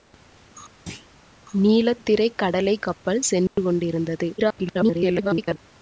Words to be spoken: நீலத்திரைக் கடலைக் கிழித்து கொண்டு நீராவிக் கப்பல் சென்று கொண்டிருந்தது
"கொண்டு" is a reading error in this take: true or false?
true